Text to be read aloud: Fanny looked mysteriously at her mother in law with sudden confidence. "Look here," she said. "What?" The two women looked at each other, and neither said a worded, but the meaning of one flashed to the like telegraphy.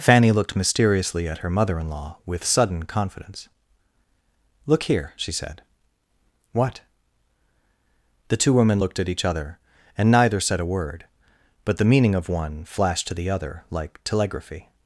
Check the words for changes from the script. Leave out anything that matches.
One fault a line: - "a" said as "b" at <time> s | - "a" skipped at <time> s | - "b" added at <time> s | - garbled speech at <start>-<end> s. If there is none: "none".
- "worded" said as "word" at 10.7 s
- "other" added at 13.3 s